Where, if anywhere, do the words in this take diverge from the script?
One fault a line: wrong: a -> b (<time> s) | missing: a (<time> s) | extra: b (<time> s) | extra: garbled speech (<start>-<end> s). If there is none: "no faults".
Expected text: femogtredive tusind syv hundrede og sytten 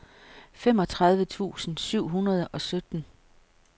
no faults